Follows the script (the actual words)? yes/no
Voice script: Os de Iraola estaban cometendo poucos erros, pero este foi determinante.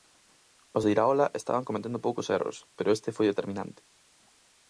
yes